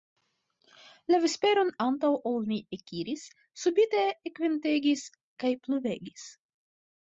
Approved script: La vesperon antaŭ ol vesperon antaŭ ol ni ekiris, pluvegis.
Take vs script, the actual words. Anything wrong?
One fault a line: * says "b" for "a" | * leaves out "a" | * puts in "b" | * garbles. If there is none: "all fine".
* says "ni ekiris subite ekventegis kaj" for "vesperon antaŭ ol ni ekiris"